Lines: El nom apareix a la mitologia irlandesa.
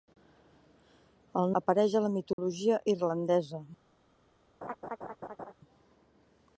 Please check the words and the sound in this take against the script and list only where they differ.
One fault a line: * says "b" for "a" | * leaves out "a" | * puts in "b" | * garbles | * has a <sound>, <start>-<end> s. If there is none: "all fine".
* leaves out "nom"
* has a dropout, 2.3-2.4 s
* has a laugh, 4.6-5.5 s